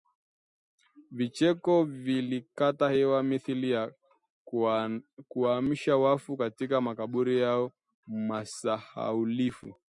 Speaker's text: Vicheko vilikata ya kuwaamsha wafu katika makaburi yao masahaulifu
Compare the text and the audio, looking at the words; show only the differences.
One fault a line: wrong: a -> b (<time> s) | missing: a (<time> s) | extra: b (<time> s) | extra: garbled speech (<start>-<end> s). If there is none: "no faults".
extra: hewa mithili (2.9 s)